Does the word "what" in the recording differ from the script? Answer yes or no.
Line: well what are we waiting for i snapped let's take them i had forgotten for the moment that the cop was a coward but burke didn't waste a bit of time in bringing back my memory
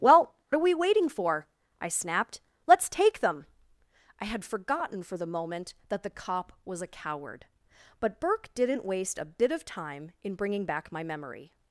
yes